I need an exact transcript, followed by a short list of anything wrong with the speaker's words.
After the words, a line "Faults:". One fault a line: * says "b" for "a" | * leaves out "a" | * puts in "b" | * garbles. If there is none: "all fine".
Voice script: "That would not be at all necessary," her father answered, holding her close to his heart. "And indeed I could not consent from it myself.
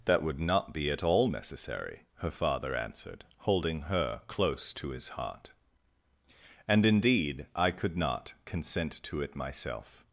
"That would not be at all necessary," her father answered, holding her close to his heart. "And indeed I could not consent to it myself.
Faults:
* says "to" for "from"